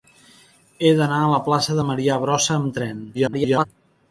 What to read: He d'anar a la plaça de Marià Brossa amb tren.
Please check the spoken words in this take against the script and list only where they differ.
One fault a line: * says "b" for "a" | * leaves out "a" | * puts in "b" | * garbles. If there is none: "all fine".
* garbles